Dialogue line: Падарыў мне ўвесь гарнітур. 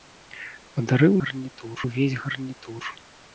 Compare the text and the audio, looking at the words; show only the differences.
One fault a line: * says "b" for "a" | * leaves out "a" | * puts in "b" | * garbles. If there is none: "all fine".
* says "гарнітур" for "мне"